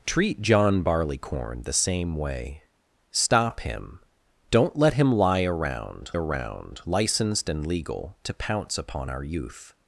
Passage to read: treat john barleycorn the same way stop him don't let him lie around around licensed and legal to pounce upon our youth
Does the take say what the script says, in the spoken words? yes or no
yes